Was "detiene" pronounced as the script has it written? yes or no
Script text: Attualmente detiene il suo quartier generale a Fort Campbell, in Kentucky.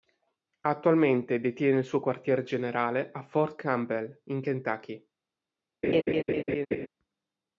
yes